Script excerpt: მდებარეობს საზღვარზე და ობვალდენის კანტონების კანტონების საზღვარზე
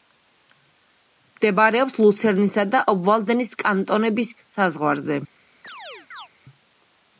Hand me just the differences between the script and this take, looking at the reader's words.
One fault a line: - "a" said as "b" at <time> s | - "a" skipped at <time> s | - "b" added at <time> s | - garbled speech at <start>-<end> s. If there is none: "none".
- "საზღვარზე" said as "ლუცერნისა" at 2.0 s
- "კანტონების" skipped at 4.3 s